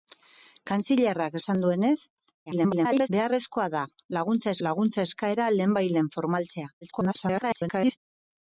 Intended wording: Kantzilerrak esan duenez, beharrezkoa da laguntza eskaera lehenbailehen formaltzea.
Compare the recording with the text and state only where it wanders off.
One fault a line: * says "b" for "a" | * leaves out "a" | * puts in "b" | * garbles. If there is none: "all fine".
* garbles
* puts in "laguntza"
* garbles